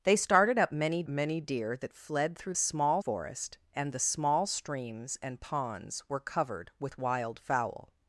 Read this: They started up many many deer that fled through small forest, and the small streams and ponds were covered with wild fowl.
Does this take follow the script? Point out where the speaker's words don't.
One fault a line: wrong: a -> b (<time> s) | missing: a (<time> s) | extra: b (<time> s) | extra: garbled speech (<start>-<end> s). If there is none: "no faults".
no faults